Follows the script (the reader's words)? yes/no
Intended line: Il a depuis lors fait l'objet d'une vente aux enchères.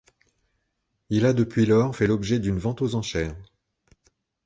yes